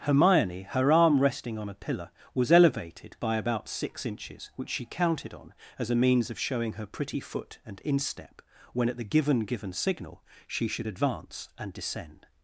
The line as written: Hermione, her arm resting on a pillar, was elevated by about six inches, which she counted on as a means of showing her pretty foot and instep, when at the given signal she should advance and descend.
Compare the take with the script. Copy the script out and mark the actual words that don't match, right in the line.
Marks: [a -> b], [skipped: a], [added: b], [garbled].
Hermione, her arm resting on a pillar, was elevated by about six inches, which she counted on as a means of showing her pretty foot and instep, when at the given [added: given] signal she should advance and descend.